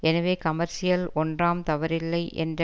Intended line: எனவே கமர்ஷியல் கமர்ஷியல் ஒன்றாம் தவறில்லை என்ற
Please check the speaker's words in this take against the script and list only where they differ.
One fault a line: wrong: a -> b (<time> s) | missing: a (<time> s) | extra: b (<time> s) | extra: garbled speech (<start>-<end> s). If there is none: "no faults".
missing: கமர்ஷியல் (1.1 s)